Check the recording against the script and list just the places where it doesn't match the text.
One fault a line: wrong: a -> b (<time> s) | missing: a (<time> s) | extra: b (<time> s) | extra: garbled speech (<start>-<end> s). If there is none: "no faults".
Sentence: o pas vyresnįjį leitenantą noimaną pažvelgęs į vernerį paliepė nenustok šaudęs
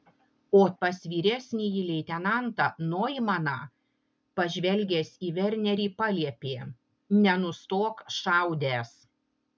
no faults